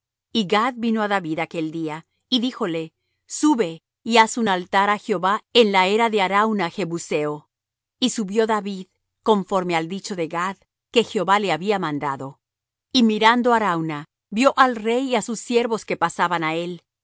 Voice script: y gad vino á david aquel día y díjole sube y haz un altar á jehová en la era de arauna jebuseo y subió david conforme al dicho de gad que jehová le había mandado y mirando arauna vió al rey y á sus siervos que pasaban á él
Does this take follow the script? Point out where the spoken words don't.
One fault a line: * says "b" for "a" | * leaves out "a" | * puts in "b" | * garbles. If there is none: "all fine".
all fine